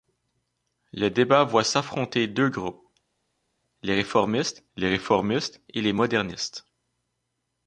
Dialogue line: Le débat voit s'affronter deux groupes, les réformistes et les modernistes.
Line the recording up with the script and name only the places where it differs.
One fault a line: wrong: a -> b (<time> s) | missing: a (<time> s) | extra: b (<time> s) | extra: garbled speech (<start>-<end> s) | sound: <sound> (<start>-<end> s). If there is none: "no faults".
extra: les réformistes (4.8 s)